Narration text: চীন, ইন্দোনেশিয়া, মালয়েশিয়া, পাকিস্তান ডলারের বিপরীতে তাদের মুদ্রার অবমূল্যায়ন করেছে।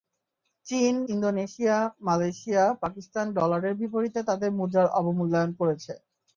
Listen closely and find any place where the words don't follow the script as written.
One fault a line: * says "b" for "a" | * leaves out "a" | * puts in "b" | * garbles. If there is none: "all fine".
all fine